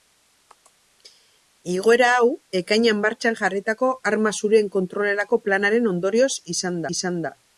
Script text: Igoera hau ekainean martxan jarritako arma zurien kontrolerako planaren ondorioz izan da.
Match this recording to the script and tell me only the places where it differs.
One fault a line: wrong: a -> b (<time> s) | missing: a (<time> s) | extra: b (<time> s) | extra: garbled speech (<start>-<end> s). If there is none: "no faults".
extra: izan (7.0 s)